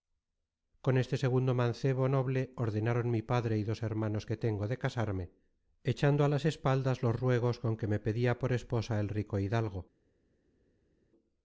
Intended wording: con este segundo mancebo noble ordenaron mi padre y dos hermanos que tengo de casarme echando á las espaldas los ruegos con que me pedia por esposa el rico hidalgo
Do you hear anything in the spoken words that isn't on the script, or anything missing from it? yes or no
no